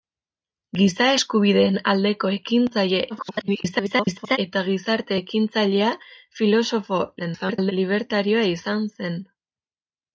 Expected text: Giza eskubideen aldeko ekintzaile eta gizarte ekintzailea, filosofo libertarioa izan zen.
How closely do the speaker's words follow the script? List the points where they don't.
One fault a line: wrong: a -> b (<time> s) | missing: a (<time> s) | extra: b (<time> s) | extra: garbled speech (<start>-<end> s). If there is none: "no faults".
extra: garbled speech (3.1-4.4 s)
extra: garbled speech (7.2-7.7 s)